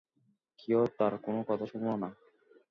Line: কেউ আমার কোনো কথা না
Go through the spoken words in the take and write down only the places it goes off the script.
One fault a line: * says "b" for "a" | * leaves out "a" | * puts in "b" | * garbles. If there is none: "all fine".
* says "তার" for "আমার"
* puts in "শুনল"